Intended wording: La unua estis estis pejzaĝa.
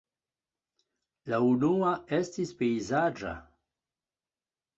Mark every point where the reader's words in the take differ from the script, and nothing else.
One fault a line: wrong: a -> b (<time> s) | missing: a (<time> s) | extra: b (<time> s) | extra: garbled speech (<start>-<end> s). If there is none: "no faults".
missing: estis (2.5 s)